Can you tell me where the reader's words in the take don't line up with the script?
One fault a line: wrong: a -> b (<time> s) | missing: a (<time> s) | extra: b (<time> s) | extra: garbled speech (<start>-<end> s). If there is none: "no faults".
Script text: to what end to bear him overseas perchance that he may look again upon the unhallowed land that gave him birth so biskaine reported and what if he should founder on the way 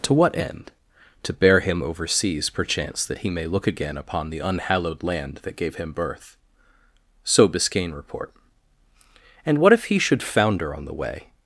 wrong: reported -> report (7.9 s)